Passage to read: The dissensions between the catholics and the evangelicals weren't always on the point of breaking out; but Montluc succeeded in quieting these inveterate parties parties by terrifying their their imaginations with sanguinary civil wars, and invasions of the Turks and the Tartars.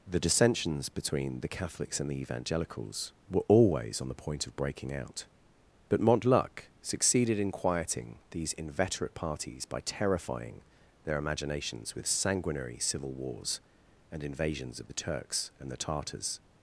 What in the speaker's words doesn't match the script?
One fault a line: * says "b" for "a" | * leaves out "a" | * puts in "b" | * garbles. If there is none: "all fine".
* says "were" for "weren't"
* leaves out "parties"
* leaves out "their"